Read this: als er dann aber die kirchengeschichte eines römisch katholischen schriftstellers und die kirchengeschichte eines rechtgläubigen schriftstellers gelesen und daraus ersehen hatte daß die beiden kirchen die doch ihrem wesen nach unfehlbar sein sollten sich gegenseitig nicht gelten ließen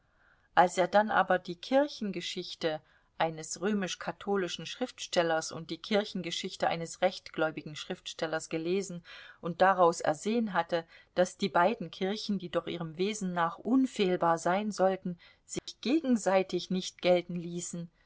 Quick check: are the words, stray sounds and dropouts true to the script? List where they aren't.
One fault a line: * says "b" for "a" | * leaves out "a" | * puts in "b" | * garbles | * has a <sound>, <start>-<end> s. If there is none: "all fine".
* has a dropout, 15.6-15.7 s